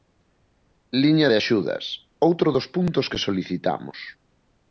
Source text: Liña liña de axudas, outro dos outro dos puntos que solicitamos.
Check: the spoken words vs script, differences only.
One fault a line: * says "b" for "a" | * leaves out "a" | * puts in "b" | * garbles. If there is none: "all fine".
* leaves out "liña"
* leaves out "outro dos"